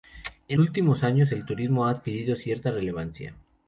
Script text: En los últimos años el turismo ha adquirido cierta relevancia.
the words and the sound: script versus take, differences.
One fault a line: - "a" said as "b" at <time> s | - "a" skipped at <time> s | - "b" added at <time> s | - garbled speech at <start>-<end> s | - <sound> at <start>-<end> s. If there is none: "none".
- "los" skipped at 0.6 s